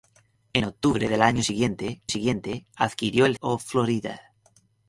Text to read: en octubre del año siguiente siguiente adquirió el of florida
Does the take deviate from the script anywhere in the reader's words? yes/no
no